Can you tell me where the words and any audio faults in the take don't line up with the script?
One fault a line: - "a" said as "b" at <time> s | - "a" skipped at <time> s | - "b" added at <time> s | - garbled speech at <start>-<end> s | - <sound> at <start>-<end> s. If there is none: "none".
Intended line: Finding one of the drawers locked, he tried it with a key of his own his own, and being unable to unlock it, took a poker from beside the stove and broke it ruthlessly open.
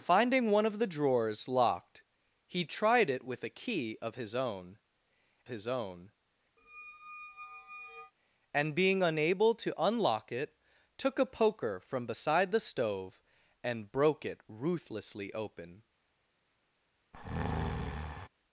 - squeak at 6.6-8.1 s
- breath at 17.1-18.3 s